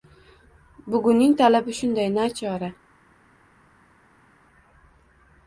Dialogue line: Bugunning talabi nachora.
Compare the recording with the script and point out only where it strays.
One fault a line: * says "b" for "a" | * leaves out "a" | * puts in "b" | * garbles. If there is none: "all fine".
* puts in "shunday"